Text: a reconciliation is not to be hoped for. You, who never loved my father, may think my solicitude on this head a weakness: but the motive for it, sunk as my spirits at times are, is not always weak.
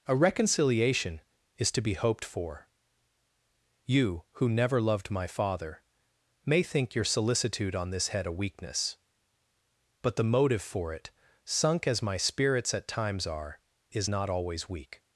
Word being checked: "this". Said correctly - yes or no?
yes